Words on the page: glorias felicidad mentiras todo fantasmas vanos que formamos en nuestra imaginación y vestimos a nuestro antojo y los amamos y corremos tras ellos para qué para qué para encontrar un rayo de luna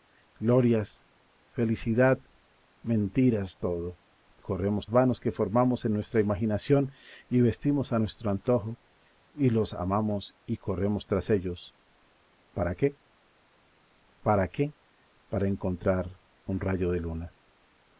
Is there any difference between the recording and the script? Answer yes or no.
yes